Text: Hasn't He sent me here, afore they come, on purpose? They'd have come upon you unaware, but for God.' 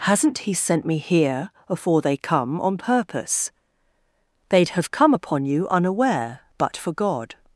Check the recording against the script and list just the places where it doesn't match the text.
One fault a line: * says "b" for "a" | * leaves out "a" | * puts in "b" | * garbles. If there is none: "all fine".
all fine